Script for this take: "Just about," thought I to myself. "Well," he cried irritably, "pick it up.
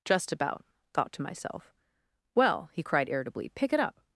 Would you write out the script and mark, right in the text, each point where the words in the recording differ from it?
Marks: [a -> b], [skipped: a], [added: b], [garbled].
"Just about," thought [skipped: I] to myself. "Well," he cried irritably, "pick it up.